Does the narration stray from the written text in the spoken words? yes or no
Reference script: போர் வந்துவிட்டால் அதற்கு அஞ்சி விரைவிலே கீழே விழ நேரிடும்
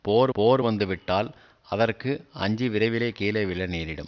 yes